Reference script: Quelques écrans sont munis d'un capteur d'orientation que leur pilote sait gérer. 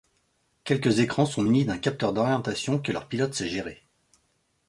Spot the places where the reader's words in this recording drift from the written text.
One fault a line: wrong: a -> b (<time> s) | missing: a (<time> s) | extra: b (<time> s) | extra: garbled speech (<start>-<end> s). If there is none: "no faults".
no faults